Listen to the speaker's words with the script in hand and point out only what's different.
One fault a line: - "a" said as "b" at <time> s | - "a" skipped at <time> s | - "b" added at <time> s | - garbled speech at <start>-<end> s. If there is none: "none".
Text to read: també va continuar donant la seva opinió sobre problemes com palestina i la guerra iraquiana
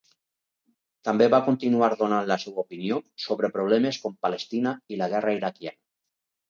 none